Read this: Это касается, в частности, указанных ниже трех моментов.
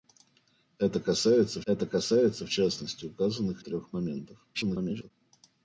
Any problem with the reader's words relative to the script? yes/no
yes